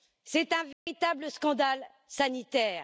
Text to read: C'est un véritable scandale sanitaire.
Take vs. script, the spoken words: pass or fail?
pass